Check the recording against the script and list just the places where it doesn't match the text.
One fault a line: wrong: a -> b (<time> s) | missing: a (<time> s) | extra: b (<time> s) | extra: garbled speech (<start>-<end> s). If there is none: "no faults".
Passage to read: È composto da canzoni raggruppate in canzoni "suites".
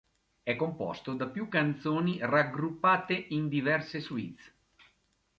extra: più (1.3 s)
wrong: canzoni -> diverse (3.5 s)